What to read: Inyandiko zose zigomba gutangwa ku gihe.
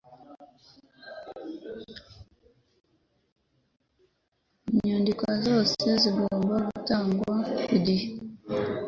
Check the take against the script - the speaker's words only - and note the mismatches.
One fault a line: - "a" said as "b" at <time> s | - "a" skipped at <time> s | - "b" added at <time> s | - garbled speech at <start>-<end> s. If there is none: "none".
none